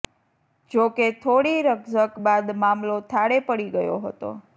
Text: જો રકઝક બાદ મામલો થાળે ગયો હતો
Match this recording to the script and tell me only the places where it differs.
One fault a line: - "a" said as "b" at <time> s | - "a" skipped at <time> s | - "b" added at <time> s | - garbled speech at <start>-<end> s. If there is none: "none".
- "કે થોડી" added at 0.9 s
- "પડી" added at 3.5 s